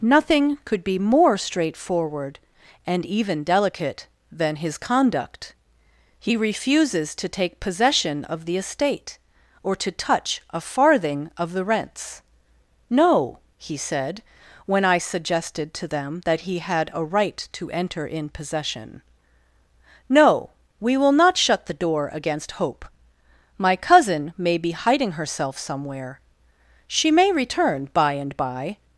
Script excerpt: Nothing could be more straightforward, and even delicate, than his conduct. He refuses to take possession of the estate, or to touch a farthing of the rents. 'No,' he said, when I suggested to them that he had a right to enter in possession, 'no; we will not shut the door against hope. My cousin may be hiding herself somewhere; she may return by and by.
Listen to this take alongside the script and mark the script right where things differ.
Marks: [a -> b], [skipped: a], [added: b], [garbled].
Nothing could be more straightforward, and even delicate, than his conduct. He refuses to take possession of the estate, or to touch a farthing of the rents. 'No,' he said, when I suggested to them that he had a right to enter in possession, 'no; we will not shut the door against hope. My cousin may be hiding herself somewhere; she may return by and by.